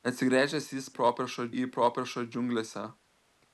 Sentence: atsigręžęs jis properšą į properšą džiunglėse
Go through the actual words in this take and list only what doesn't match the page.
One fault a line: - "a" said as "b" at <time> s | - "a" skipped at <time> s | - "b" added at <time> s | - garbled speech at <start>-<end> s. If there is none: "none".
none